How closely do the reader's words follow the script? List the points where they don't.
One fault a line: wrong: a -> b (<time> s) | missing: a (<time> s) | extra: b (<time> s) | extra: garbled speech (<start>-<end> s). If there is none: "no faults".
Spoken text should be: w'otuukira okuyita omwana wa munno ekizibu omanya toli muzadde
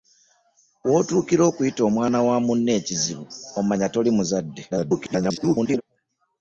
extra: garbled speech (4.7-5.8 s)